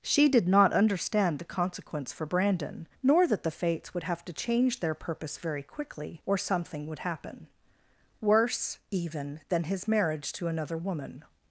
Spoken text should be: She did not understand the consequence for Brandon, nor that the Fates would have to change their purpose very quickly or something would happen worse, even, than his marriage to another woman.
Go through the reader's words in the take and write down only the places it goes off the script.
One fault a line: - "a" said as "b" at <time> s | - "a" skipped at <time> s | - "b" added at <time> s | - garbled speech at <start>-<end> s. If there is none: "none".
none